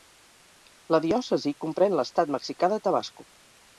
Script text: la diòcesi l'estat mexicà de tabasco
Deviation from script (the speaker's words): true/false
true